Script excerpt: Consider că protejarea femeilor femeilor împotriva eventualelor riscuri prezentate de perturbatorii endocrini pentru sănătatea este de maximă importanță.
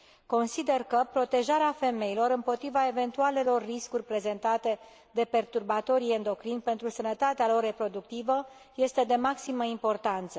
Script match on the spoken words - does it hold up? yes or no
no